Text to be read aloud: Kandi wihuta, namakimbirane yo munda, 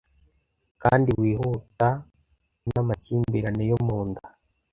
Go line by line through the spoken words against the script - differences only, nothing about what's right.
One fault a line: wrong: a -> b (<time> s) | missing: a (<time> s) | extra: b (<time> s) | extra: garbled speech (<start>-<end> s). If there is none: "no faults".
no faults